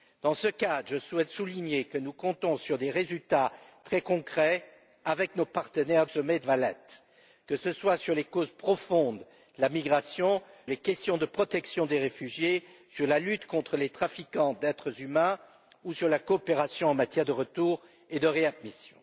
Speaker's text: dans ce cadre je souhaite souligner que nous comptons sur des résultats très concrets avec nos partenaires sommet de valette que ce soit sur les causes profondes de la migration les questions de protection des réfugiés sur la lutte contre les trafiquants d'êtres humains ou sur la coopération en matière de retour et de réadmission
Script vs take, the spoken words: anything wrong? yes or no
no